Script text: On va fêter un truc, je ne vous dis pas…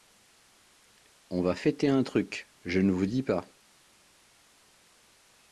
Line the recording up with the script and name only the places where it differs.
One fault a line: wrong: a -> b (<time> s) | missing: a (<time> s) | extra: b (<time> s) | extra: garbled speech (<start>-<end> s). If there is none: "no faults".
no faults